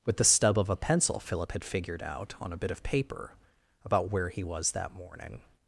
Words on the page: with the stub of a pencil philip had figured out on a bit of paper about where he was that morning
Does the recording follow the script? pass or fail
pass